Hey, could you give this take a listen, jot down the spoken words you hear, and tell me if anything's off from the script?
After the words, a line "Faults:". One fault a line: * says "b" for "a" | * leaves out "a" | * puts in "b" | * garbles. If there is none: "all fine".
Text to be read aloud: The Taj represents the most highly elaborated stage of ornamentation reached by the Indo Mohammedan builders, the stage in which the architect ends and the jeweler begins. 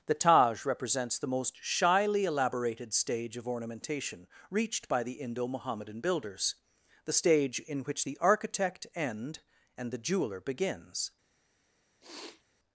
The Taj represents the most shyly elaborated stage of ornamentation reached by the Indo Mohammedan builders, the stage in which the architect end and the jeweler begins.
Faults:
* says "shyly" for "highly"
* says "end" for "ends"